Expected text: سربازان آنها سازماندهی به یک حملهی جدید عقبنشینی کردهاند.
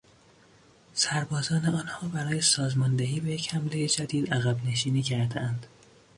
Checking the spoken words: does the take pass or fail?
fail